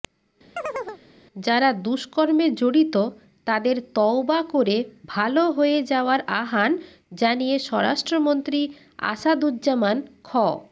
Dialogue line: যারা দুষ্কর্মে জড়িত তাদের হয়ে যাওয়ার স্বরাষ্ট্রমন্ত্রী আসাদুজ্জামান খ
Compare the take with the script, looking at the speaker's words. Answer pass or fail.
fail